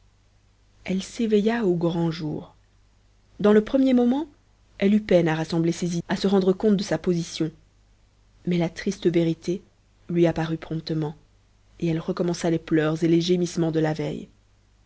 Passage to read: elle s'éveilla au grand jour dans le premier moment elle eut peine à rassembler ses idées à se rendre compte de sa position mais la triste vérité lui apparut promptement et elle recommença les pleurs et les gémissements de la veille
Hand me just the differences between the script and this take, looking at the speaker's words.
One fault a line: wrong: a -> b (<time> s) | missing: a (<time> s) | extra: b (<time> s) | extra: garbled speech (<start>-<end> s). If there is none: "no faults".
missing: idées (6.0 s)